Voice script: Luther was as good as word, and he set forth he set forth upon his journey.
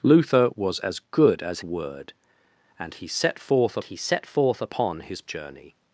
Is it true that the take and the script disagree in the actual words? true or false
false